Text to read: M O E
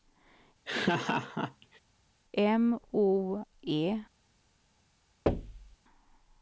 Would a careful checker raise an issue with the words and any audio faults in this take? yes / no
yes